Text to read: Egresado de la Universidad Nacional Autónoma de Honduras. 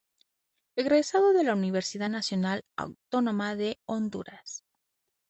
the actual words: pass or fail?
pass